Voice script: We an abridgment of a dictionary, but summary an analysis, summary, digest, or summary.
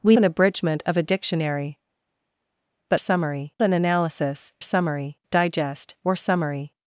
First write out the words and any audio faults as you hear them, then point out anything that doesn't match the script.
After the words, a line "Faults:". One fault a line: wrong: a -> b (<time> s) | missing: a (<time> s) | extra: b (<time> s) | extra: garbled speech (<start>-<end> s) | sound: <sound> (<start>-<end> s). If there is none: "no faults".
We an abridgment of a dictionary, but summary an analysis, summary, digest, or summary.
Faults:
no faults